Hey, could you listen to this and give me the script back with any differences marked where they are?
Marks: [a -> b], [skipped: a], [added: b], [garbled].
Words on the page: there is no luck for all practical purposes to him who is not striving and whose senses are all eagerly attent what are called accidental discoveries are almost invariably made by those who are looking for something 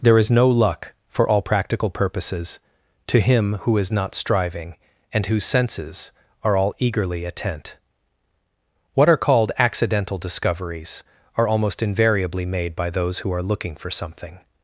there is no luck for all practical purposes to him who is not striving and whose senses are all eagerly attent what are called accidental discoveries are almost invariably made by those who are looking for something